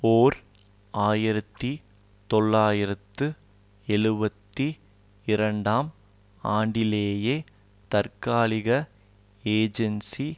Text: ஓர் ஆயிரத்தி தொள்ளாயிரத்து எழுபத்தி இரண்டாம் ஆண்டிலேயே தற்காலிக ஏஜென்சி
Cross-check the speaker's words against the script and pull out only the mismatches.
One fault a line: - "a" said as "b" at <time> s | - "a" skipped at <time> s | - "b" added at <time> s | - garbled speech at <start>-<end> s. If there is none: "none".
none